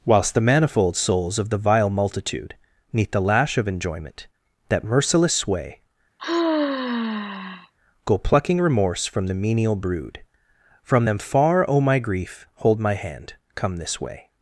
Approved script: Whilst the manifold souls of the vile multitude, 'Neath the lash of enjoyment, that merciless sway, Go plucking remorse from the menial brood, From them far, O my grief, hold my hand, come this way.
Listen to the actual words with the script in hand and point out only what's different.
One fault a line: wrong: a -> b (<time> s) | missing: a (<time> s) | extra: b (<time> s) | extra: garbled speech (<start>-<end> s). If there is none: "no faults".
no faults